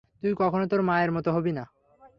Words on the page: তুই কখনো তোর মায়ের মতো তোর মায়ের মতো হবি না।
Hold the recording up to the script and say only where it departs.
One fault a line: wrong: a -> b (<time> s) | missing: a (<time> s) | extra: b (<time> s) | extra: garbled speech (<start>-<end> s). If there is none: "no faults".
missing: তোর মায়ের মতো (1.3 s)